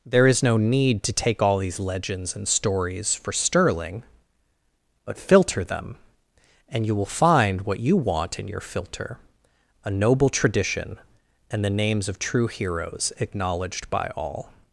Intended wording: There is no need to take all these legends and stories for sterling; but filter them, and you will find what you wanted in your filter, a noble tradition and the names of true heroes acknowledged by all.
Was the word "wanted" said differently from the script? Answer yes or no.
yes